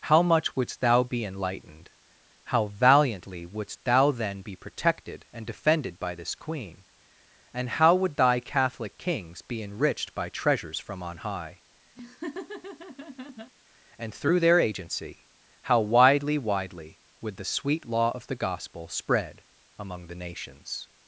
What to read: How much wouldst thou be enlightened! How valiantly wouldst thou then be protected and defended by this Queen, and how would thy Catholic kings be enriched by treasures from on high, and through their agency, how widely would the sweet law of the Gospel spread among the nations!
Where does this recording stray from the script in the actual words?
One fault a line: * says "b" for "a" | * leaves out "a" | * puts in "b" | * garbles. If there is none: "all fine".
* puts in "widely"